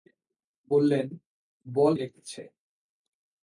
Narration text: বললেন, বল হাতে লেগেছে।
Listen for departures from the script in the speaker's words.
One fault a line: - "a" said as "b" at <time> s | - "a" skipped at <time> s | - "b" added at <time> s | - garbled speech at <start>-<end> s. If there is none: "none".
- "হাতে" skipped at 1.9 s